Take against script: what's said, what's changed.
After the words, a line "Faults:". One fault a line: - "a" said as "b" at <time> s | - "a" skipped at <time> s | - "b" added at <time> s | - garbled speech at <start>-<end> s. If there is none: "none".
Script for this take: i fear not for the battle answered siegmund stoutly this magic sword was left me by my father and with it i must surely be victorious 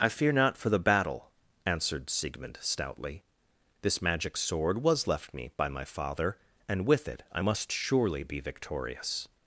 i fear not for the battle answered siegmund stoutly this magic sword was left me by my father and with it i must surely be victorious
Faults:
none